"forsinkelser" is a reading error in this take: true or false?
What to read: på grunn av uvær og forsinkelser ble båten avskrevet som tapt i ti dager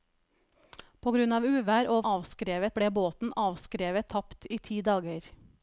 true